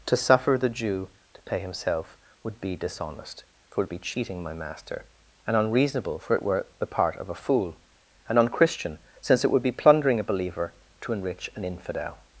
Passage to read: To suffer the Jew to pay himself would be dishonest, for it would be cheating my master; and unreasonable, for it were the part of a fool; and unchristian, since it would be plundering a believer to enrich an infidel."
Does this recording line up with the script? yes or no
yes